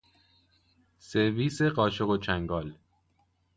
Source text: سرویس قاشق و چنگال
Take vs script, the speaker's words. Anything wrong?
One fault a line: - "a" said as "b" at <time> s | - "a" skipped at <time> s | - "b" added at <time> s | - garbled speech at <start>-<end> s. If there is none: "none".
none